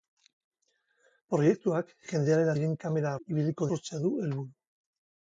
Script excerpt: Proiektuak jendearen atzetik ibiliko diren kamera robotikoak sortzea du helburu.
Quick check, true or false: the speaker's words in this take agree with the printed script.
false